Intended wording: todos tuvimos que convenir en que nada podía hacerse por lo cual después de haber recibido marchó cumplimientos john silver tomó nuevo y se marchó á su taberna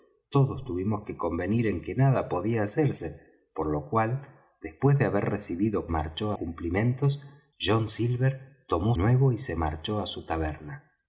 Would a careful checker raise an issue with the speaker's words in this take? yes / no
no